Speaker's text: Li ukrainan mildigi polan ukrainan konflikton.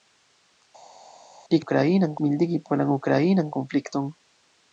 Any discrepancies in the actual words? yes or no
no